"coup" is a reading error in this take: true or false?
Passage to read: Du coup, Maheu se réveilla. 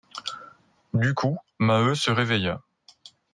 false